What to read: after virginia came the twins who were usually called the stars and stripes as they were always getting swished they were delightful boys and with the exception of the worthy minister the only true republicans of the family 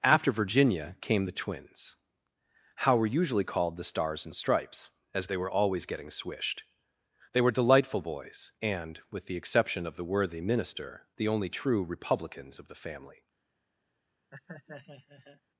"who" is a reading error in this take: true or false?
true